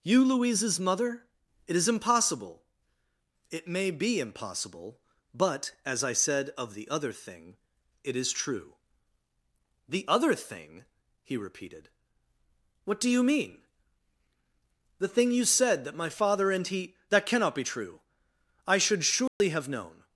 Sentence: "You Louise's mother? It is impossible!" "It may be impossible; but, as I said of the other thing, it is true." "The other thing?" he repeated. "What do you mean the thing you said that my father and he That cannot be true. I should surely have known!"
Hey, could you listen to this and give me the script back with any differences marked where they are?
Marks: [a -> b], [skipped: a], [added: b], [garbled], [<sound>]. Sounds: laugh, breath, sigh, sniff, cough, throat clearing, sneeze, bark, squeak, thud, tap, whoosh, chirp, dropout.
"You Louise's mother? It is impossible!" "It may be impossible; but, as I said of the other thing, it is true." "The other thing?" he repeated. "What do you mean the thing you said that my father and he That cannot be true. I should surely [dropout] have known!"